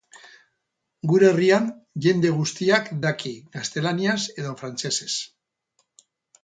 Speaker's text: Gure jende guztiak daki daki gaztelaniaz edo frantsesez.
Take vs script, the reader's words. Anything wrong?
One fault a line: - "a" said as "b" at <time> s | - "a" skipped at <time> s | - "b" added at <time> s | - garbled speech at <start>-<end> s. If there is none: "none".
- "herrian" added at 1.3 s
- "daki" skipped at 3.4 s